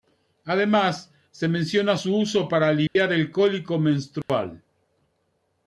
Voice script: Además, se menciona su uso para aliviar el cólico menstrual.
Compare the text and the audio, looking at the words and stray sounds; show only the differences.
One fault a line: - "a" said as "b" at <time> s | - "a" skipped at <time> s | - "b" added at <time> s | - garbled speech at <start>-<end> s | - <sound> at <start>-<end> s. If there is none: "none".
- dropout at 2.9-3.0 s
- dropout at 4.2-4.3 s